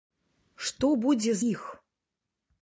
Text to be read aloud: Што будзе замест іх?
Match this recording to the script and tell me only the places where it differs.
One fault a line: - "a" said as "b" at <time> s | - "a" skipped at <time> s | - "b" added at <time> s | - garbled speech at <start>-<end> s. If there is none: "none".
- "замест" skipped at 1.4 s